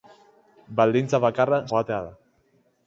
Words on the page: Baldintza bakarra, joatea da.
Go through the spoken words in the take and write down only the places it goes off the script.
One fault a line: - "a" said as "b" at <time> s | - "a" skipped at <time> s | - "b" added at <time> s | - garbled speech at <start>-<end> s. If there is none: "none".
none